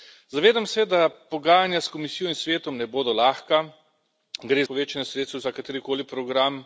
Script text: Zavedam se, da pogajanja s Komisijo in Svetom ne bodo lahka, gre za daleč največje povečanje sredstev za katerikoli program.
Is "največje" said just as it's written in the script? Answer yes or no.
no